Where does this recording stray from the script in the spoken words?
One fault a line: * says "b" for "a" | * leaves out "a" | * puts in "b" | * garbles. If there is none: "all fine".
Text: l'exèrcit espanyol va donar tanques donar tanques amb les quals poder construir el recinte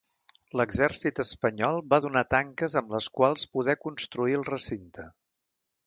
* leaves out "donar tanques"